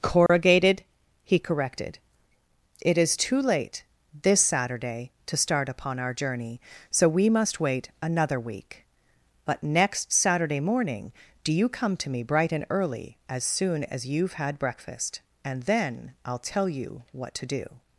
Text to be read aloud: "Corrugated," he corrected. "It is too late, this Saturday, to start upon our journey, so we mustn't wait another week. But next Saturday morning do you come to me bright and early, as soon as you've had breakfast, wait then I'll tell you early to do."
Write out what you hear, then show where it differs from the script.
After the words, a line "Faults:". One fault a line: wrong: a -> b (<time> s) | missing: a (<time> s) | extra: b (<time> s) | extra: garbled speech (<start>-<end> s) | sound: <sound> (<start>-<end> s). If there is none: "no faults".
"Corrugated," he corrected. "It is too late, this Saturday, to start upon our journey, so we must wait another week. But next Saturday morning do you come to me bright and early, as soon as you've had breakfast, and then I'll tell you what to do."
Faults:
sound: dropout (0.3-0.3 s)
wrong: mustn't -> must (7.3 s)
wrong: wait -> and (15.4 s)
wrong: early -> what (17.1 s)